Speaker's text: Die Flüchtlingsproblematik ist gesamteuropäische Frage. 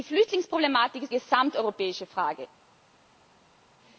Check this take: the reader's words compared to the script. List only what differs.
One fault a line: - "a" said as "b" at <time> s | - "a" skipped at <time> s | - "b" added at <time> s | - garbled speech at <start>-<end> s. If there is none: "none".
none